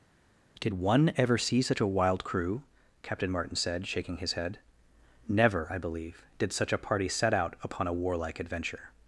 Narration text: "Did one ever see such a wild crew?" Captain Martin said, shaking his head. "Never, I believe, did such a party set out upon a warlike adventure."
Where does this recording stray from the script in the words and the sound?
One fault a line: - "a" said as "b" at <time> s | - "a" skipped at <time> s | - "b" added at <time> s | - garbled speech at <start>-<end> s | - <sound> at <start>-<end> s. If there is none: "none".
none